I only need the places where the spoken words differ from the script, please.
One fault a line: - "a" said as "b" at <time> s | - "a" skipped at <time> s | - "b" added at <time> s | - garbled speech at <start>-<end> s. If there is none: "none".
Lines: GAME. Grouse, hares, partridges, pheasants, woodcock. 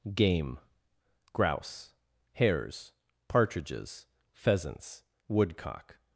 none